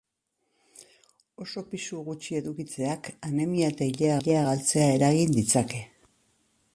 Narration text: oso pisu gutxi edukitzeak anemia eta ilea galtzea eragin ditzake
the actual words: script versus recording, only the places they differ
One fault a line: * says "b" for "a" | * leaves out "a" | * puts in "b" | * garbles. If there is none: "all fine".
* puts in "ilea"